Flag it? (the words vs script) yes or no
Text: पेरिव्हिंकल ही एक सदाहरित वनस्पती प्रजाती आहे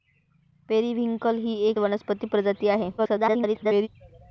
yes